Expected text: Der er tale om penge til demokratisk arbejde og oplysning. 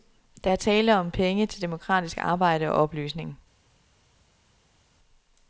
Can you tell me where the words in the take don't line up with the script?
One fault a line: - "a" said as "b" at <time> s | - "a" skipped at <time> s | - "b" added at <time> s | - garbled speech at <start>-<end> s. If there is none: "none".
none